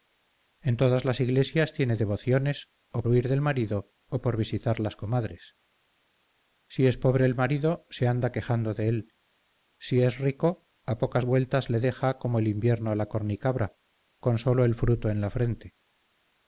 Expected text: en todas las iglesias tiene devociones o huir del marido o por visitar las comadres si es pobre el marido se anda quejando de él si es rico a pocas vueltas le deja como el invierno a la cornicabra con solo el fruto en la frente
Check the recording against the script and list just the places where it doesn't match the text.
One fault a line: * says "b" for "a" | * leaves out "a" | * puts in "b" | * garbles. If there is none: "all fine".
all fine